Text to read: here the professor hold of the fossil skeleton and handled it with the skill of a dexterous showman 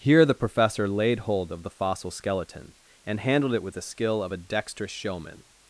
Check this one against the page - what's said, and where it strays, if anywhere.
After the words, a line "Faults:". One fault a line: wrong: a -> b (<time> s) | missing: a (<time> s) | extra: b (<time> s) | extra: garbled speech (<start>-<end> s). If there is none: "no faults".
here the professor laid hold of the fossil skeleton and handled it with the skill of a dexterous showman
Faults:
extra: laid (0.9 s)